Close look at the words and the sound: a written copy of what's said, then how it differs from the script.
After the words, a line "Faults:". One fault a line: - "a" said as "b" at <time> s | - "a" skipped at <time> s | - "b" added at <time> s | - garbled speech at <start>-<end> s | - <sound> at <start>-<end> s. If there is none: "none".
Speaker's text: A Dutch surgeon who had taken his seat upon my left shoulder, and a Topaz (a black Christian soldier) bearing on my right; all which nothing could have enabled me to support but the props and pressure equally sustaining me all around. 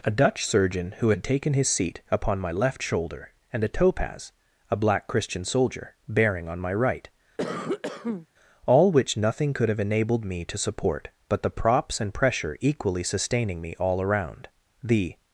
A Dutch surgeon who had taken his seat upon my left shoulder, and a Topaz (a black Christian soldier) bearing on my right; all which nothing could have enabled me to support but the props and pressure equally sustaining me all around. The
Faults:
- cough at 7.4-8.3 s
- "The" added at 14.8 s